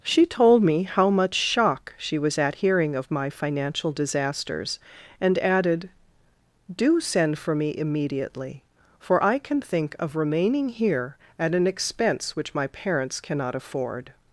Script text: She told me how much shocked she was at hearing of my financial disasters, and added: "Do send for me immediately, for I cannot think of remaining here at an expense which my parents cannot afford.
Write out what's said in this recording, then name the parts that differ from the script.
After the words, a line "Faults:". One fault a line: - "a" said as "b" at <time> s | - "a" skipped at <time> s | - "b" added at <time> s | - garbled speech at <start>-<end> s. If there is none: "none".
She told me how much shock she was at hearing of my financial disasters, and added: "Do send for me immediately, for I can think of remaining here at an expense which my parents cannot afford.
Faults:
- "shocked" said as "shock" at 1.4 s
- "cannot" said as "can" at 9.4 s